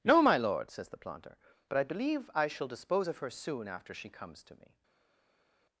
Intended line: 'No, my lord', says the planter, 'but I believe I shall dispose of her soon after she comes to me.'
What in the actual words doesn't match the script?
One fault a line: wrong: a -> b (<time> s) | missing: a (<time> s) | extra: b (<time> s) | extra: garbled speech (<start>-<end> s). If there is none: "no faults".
no faults